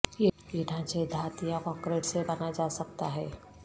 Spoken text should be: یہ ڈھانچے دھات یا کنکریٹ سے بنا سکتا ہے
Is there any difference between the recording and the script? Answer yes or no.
yes